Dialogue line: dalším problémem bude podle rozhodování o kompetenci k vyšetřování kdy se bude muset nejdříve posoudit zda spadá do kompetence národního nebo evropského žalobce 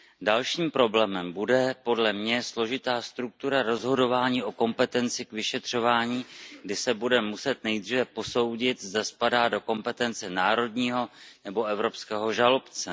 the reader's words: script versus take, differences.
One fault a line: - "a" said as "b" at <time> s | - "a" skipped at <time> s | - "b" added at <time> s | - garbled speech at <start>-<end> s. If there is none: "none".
- "mě složitá struktura" added at 2.1 s